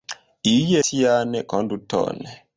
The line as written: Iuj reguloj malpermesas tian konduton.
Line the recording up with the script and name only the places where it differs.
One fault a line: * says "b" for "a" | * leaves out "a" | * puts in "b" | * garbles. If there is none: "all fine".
* leaves out "reguloj malpermesas"